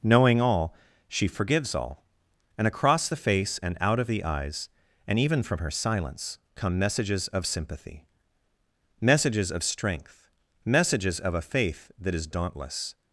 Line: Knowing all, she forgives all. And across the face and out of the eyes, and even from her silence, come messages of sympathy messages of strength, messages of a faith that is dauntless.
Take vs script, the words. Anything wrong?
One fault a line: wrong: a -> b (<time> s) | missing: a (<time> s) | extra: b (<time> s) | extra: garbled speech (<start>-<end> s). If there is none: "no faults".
no faults